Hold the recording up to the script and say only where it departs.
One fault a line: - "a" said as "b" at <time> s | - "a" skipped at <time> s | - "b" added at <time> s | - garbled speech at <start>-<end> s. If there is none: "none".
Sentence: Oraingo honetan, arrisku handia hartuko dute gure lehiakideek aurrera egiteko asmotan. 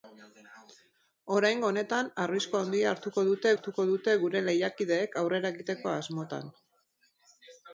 - "hartuko dute" added at 3.5 s